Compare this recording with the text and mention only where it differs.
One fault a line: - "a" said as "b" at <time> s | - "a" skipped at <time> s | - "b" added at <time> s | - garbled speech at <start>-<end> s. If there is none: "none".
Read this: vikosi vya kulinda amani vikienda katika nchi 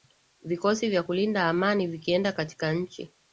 none